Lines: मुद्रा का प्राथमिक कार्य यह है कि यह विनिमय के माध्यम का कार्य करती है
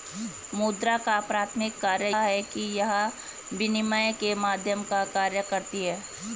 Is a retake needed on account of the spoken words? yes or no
yes